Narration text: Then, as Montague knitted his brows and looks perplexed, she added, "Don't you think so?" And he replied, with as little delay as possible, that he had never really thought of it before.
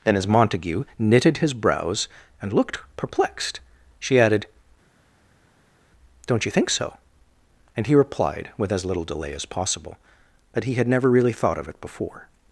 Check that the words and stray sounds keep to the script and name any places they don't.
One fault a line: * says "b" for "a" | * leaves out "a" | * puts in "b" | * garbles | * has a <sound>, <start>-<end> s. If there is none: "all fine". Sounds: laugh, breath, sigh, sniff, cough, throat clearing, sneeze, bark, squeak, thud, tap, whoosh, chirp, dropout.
* says "looked" for "looks"